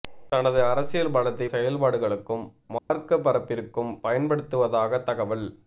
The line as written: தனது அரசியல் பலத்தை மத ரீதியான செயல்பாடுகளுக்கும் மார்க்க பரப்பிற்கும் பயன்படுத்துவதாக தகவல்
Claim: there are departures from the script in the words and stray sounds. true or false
true